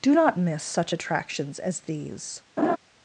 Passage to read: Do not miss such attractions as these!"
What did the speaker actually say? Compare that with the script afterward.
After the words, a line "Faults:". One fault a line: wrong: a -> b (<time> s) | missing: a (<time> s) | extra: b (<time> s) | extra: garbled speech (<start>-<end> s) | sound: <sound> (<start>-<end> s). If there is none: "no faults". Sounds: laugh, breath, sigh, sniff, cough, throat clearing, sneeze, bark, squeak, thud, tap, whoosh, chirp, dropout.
Do not miss such attractions as these!"
Faults:
sound: laugh (2.6-2.8 s)